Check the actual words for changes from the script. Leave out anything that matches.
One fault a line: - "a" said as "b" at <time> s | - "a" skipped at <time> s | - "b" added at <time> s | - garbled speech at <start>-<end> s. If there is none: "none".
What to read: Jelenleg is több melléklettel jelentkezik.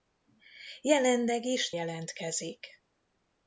- "több melléklettel" skipped at 1.7 s